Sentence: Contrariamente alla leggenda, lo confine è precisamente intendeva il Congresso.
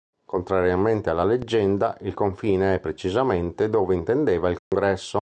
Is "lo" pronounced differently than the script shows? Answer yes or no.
yes